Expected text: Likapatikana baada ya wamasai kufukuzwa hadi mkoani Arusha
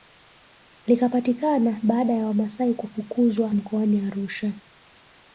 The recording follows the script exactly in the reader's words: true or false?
false